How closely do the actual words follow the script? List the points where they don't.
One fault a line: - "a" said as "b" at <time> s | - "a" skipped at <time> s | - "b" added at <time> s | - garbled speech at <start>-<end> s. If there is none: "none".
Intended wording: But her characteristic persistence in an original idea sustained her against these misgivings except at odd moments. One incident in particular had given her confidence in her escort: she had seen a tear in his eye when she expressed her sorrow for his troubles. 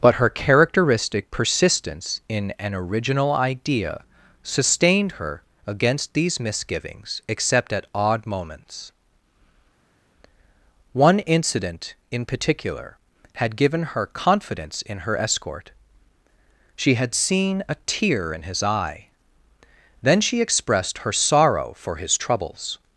- "when" said as "then" at 20.0 s